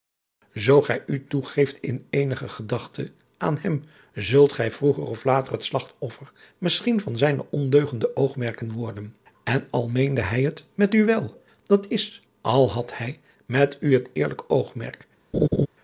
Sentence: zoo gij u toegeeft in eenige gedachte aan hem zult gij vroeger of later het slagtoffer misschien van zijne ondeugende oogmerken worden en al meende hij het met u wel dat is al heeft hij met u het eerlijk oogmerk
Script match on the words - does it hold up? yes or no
no